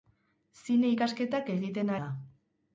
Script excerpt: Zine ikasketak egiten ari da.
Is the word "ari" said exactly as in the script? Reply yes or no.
no